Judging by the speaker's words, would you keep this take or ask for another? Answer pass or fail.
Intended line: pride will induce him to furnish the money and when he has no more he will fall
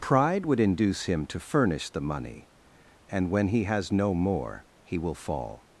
fail